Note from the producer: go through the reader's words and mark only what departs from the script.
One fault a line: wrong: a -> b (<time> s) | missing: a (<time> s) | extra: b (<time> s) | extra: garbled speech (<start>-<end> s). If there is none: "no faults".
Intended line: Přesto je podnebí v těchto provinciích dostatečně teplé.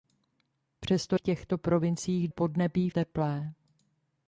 missing: je podnebí (1.1 s)
wrong: dostatečně -> podnebí (2.3 s)